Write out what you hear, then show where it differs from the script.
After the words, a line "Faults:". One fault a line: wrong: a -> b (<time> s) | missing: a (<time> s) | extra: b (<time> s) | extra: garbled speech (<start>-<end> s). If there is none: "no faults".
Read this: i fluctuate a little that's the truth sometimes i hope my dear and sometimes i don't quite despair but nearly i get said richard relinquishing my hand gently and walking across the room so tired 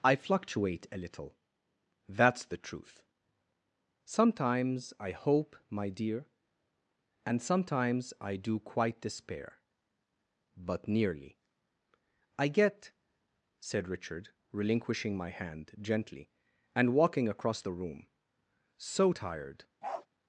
i fluctuate a little that's the truth sometimes i hope my dear and sometimes i do quite despair but nearly i get said richard relinquishing my hand gently and walking across the room so tired
Faults:
wrong: don't -> do (8.3 s)